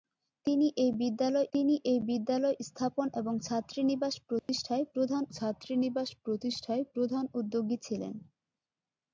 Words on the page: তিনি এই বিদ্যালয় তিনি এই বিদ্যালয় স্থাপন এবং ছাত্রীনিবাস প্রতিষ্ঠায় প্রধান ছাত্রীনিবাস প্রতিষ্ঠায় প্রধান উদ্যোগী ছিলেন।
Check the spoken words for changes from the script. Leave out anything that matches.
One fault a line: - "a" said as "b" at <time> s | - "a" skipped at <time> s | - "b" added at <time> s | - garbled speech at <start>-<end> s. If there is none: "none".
none